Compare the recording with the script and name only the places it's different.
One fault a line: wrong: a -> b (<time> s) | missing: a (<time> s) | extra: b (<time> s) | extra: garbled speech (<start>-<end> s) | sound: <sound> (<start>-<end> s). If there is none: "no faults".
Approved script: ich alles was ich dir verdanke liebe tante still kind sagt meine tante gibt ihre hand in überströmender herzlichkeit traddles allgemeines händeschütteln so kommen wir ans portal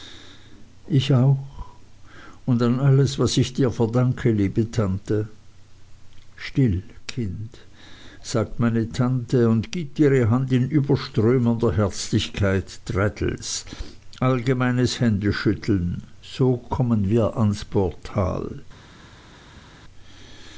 extra: auch und an (1.1 s)
extra: und (9.5 s)